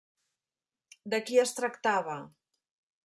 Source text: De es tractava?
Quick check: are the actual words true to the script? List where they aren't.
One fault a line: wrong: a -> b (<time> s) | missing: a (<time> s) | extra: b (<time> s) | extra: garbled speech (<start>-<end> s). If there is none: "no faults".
extra: qui (1.3 s)